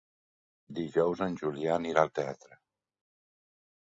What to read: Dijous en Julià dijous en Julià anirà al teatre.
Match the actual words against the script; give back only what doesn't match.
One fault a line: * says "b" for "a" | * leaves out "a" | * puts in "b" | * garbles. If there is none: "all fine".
* leaves out "dijous en Julià"